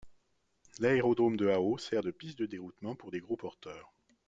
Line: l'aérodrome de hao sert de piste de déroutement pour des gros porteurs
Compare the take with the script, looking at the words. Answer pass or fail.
pass